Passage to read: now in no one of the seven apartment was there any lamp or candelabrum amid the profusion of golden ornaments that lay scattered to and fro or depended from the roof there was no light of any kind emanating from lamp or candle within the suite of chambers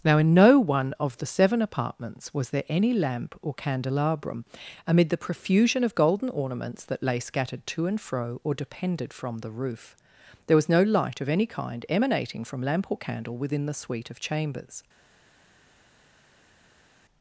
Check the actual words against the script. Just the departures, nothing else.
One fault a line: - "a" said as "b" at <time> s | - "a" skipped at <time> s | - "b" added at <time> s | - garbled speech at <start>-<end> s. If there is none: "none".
- "apartment" said as "apartments" at 1.6 s